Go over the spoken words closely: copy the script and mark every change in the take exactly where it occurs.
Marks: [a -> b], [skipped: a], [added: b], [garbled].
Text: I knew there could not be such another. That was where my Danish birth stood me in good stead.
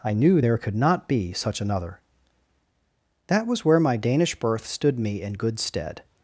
I knew there could not be such another. That was where my Danish birth stood me in good stead.